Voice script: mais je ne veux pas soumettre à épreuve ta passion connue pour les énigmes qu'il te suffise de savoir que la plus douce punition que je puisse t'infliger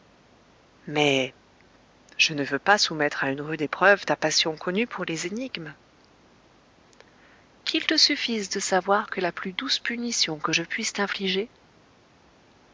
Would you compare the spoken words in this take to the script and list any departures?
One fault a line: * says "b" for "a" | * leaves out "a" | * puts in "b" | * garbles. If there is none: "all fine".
* puts in "une rude"